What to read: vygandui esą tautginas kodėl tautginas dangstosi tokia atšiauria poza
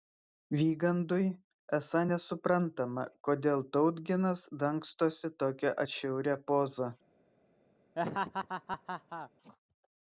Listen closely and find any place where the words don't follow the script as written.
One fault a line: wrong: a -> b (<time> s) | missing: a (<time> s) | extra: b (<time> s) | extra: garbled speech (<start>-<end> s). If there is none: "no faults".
wrong: tautginas -> nesuprantama (2.1 s)